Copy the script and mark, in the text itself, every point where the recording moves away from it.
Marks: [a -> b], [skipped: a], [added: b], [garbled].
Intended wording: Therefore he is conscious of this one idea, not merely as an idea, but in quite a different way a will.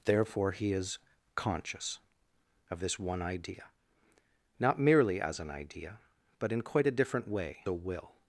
Therefore he is conscious of this one idea, not merely as an idea, but in quite a different way a will.